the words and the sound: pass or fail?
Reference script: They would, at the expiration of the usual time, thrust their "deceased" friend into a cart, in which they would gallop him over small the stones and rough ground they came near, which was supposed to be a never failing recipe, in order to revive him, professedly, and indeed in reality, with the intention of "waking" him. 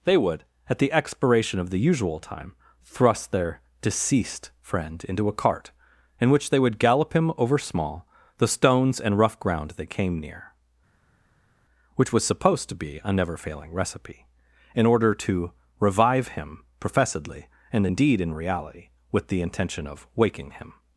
pass